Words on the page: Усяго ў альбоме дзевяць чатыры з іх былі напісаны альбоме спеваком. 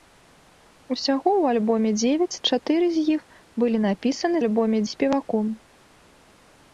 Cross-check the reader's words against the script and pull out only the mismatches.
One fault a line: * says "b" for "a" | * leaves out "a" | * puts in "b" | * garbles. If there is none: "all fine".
all fine